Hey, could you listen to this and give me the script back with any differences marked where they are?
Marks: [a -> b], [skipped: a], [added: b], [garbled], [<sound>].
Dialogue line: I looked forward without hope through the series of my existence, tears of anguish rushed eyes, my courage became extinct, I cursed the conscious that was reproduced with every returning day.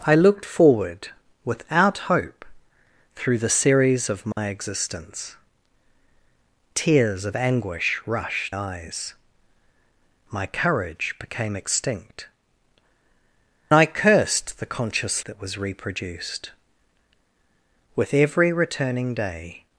I looked forward without hope through the series of my [dropout] existence, tears of anguish rushed eyes, my courage became extinct, I cursed the conscious that was reproduced with every returning day.